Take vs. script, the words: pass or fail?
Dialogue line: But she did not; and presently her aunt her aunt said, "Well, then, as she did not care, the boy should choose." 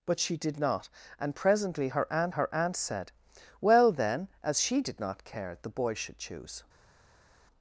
pass